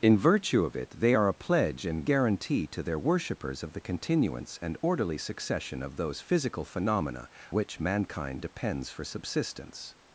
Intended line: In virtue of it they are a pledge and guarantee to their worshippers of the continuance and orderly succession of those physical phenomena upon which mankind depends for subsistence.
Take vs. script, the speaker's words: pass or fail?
fail